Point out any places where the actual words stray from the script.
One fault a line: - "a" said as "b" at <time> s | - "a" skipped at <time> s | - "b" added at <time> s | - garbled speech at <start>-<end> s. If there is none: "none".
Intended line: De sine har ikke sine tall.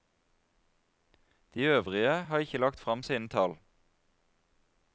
- "sine" said as "øvrige" at 1.6 s
- "lagt frem" added at 2.6 s